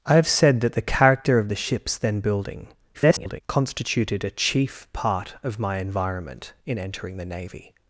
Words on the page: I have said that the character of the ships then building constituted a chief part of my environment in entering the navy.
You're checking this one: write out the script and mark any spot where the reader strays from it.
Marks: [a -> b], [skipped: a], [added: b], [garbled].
I have said that the character of the ships then building [garbled] constituted a chief part of my environment in entering the navy.